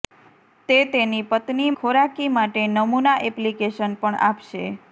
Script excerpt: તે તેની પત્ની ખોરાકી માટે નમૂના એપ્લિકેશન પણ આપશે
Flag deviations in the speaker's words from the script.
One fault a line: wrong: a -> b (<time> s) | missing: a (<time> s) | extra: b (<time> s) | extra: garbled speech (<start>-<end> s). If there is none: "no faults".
no faults